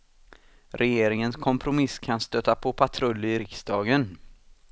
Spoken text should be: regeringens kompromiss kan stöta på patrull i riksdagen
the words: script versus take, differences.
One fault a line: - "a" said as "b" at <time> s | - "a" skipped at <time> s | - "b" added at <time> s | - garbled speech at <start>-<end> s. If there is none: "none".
none